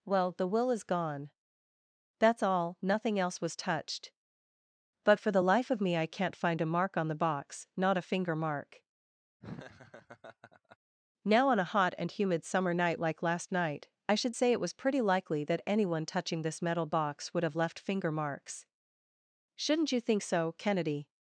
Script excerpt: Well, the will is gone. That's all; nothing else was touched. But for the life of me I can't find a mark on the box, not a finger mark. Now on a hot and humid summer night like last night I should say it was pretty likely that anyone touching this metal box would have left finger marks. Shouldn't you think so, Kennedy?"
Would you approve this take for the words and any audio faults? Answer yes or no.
no